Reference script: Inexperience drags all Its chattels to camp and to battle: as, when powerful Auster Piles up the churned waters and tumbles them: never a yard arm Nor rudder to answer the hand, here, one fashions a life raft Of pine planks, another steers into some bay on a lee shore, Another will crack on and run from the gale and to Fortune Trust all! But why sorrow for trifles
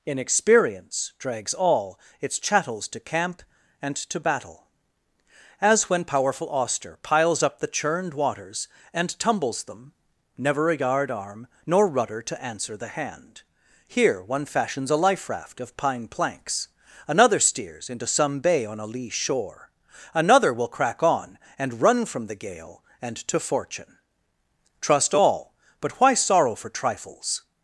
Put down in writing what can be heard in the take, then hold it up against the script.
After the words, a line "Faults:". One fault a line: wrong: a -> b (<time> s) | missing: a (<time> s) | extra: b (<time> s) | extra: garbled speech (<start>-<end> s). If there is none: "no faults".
Inexperience drags all Its chattels to camp and to battle: as, when powerful Auster Piles up the churned waters and tumbles them: never a yard arm Nor rudder to answer the hand, here, one fashions a life raft Of pine planks, another steers into some bay on a lee shore, Another will crack on and run from the gale and to Fortune Trust all! But why sorrow for trifles
Faults:
no faults